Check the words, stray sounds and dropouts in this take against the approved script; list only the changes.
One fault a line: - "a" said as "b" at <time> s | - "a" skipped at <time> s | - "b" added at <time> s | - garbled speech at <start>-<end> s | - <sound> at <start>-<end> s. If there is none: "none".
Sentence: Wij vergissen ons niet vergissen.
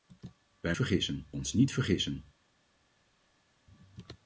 none